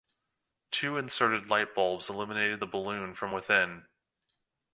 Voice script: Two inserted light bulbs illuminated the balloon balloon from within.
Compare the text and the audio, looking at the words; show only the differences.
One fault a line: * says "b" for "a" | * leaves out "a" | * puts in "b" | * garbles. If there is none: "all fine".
* leaves out "balloon"